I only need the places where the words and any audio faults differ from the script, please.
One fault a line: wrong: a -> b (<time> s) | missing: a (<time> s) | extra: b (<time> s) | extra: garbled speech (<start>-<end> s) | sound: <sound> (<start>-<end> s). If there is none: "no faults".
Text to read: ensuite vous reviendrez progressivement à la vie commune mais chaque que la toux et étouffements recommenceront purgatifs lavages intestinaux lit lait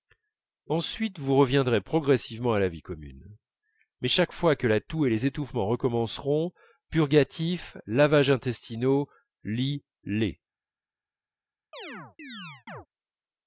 extra: fois (4.3 s)
extra: les (5.1 s)
sound: chirp (11.7-12.9 s)